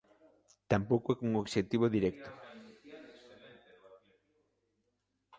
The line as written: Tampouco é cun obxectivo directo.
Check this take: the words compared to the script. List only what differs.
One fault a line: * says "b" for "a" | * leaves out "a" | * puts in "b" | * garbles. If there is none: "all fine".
all fine